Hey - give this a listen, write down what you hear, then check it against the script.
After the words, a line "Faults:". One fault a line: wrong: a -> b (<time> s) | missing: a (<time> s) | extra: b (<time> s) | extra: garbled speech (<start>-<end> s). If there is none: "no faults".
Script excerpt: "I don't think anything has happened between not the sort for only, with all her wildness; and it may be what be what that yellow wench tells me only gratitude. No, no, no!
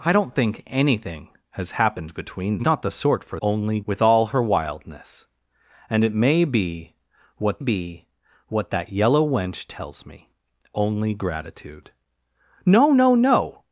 "I don't think anything has happened between not the sort for only, with all her wildness; and it may be what be what that yellow wench tells me only gratitude. No, no, no!
Faults:
no faults